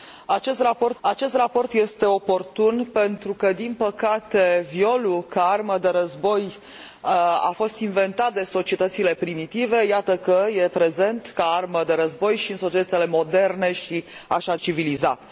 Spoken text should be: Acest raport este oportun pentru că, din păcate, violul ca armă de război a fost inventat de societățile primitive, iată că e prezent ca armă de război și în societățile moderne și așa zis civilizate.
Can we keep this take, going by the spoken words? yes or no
no